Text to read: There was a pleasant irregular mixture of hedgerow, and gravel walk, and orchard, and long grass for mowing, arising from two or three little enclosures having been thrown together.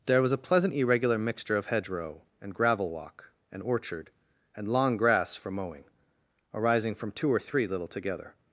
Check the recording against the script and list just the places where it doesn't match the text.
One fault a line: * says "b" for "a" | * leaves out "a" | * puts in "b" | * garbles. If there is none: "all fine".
* leaves out "enclosures having been thrown"